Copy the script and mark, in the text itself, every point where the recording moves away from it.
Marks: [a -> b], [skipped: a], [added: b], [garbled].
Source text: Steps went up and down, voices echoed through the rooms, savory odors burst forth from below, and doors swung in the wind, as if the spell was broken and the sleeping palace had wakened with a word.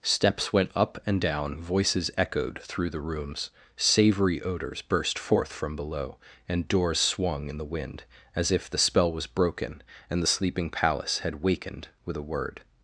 Steps went up and down, voices echoed through the rooms, savory odors burst forth from below, and doors swung in the wind, as if the spell was broken and the sleeping palace had wakened with a word.